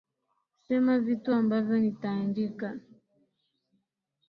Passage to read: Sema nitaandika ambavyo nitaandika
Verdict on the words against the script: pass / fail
fail